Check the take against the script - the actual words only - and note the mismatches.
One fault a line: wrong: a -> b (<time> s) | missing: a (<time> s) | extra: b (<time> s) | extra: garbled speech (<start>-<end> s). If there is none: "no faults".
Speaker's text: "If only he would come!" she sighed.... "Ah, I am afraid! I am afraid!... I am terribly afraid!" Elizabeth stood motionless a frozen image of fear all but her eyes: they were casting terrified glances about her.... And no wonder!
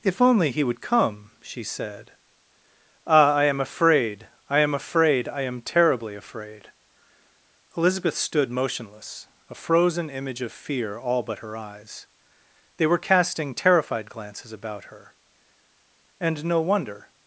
wrong: sighed -> said (1.6 s)